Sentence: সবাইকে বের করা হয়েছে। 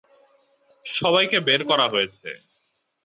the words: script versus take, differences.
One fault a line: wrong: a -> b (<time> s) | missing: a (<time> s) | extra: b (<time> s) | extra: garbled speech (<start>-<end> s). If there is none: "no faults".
no faults